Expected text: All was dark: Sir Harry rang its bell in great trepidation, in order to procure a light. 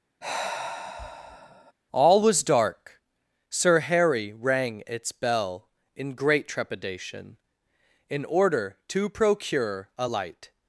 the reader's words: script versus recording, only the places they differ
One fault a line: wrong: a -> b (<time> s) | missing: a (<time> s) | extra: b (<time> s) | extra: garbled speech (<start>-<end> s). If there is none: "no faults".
no faults